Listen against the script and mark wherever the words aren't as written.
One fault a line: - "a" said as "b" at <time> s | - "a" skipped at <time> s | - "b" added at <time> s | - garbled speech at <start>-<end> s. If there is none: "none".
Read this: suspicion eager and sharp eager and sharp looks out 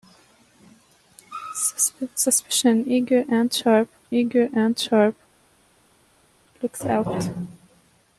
none